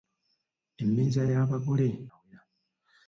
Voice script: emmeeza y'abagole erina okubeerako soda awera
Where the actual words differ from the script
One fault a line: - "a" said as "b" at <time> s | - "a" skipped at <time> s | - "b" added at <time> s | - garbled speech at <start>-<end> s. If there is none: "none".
- "erina okubeerako soda" skipped at 1.9 s